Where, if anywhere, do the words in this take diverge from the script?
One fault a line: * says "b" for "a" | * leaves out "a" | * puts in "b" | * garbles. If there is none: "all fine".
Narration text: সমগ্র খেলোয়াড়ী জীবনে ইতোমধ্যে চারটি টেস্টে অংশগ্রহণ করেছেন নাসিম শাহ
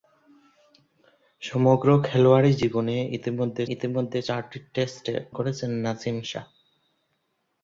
* puts in "ইতোমধ্যে"
* leaves out "অংশগ্রহণ"